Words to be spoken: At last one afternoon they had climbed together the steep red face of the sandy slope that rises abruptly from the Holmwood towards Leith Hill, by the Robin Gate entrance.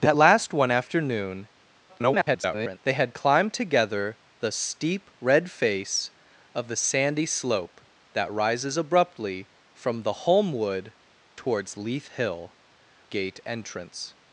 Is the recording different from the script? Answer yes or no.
yes